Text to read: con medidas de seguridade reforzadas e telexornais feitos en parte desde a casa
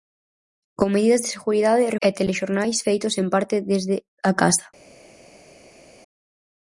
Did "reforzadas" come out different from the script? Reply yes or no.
yes